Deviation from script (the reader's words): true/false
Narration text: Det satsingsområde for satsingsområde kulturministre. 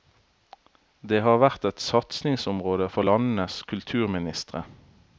true